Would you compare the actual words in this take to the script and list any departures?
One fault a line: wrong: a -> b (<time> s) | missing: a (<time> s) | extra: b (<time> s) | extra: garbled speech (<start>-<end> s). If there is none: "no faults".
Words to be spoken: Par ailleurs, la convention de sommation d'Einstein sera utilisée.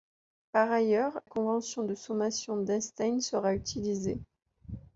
missing: la (1.2 s)